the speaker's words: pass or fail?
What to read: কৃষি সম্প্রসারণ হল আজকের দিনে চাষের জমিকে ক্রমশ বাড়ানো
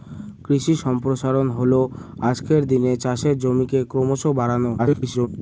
fail